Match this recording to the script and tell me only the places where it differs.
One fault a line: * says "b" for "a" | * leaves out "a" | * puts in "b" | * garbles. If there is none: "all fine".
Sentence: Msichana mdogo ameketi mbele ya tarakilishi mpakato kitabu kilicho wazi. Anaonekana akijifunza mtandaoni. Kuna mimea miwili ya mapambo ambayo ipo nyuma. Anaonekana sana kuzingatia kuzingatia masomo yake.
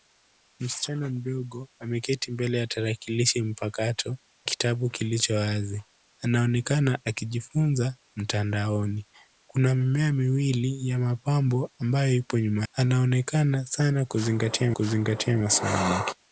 all fine